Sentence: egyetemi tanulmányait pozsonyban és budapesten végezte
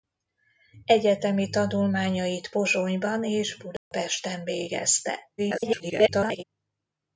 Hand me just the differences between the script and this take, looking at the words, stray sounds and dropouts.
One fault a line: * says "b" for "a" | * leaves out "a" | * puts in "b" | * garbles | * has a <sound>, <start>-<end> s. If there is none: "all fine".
* has a dropout, 3.8-3.9 s
* garbles